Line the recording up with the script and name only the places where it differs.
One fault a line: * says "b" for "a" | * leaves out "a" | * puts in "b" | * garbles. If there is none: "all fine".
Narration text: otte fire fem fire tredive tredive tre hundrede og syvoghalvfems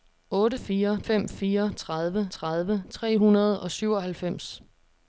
all fine